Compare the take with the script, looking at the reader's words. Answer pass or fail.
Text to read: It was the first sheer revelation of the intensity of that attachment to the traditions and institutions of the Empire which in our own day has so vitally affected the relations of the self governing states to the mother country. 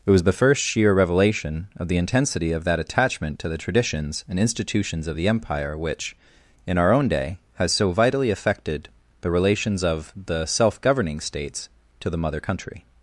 pass